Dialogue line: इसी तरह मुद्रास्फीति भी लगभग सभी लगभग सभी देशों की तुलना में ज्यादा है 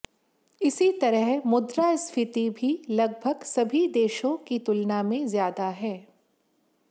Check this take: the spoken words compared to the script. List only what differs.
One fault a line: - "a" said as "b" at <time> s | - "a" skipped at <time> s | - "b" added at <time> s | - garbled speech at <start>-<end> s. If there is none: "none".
- "लगभग सभी" skipped at 3.9 s